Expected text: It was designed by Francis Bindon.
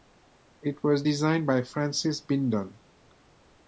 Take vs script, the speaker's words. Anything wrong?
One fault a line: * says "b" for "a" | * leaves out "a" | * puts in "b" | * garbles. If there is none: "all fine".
all fine